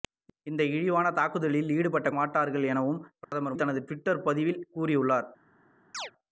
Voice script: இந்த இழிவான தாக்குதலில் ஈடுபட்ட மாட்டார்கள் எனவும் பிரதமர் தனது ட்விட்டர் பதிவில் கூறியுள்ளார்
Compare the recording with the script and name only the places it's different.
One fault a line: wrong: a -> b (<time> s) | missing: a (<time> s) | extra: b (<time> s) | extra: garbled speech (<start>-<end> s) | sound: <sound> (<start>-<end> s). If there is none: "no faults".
sound: dropout (3.2-3.3 s)
sound: chirp (5.9-6.1 s)